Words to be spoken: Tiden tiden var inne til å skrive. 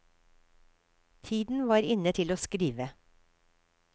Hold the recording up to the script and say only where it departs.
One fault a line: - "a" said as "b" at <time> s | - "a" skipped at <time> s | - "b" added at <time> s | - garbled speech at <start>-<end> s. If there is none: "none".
- "tiden" skipped at 1.7 s